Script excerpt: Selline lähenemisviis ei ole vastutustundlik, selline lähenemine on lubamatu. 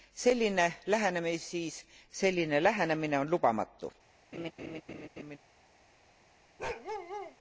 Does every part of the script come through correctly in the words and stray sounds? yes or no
no